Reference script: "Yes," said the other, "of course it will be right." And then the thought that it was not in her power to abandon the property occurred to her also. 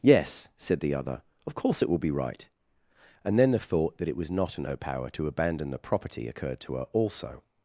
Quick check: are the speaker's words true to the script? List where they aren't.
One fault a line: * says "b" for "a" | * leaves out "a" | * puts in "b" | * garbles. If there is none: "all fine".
all fine